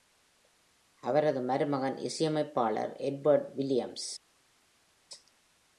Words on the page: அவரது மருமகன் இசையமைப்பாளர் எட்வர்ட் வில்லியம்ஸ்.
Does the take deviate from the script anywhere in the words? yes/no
no